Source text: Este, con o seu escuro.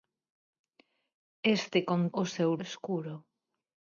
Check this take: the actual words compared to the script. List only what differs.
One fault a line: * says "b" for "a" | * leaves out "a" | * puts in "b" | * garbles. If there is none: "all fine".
all fine